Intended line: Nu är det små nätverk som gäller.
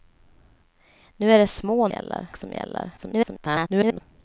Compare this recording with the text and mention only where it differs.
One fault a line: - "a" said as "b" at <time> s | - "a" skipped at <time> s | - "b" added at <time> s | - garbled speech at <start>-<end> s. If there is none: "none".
- "nätverk" said as "gäller" at 1.9 s
- garbled speech at 3.0-4.0 s